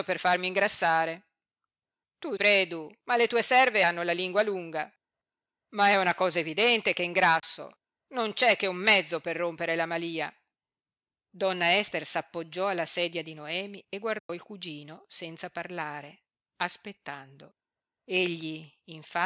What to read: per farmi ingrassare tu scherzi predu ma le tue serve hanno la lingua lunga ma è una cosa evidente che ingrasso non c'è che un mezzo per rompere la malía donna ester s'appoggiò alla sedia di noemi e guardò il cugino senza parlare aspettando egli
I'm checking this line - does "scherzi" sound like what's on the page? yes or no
no